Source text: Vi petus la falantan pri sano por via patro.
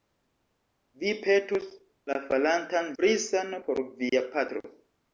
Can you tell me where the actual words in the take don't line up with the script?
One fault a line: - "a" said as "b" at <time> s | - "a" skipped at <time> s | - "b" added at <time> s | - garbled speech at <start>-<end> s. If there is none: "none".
none